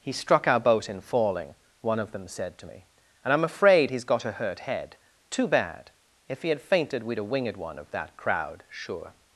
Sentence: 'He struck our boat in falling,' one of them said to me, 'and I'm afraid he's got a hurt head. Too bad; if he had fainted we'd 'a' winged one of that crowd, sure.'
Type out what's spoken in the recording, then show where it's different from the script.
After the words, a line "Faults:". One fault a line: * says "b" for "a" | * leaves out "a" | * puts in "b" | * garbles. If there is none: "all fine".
'He struck our boat in falling,' one of them said to me, 'and I'm afraid he's got a hurt head. Too bad; if he had fainted we'd 'a' winged one of that crowd, sure.'
Faults:
all fine